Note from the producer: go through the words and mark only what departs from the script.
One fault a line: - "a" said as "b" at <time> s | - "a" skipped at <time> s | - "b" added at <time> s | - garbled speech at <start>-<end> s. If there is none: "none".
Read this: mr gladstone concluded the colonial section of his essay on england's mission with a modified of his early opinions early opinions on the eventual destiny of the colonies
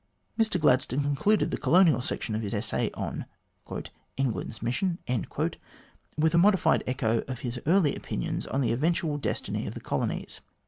- "echo" added at 6.8 s
- "early opinions" skipped at 8.4 s